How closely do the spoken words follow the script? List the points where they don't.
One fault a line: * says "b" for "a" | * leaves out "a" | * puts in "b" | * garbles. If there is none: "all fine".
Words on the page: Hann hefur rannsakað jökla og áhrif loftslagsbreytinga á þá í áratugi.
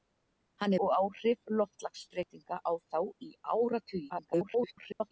* leaves out "hefur rannsakað jökla"
* garbles